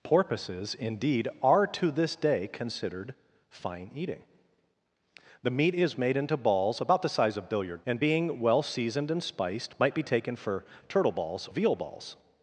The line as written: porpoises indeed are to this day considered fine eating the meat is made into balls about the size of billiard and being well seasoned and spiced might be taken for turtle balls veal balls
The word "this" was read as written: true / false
true